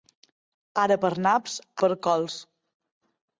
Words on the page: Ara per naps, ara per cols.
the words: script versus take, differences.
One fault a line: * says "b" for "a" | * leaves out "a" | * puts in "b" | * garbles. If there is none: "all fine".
* leaves out "ara"